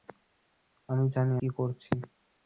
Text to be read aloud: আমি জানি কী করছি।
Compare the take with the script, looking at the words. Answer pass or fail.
pass